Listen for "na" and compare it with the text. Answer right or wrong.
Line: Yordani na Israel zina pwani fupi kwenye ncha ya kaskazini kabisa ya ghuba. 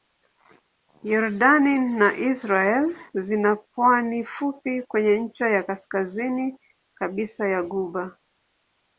right